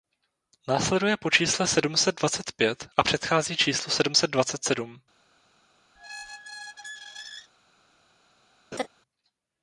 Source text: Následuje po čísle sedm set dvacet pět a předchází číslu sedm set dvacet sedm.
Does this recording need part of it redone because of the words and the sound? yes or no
yes